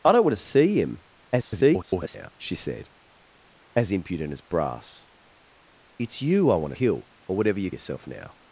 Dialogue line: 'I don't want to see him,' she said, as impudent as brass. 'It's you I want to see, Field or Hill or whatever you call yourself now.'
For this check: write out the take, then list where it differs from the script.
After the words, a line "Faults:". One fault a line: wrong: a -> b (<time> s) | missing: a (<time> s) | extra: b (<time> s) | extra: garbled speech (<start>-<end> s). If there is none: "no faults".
'I don't want to see him,' [garbled] she said, as impudent as brass. 'It's you I want to Hill or whatever you yourself now.'
Faults:
extra: garbled speech (1.3-2.3 s)
missing: see Field or (6.8 s)
missing: call (7.7 s)